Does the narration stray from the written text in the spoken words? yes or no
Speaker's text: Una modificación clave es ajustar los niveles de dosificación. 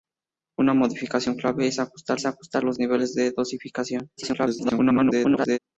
yes